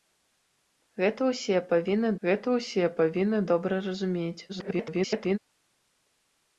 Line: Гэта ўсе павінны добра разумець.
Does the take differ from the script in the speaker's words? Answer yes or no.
yes